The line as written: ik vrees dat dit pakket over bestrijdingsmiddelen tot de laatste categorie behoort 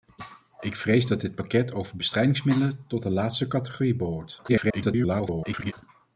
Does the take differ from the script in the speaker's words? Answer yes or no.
yes